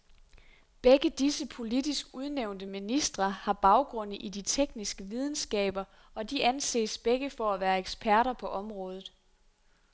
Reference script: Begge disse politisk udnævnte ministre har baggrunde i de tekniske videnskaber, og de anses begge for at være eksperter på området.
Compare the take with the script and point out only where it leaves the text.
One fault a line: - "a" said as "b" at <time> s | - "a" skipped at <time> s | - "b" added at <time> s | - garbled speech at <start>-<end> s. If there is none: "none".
none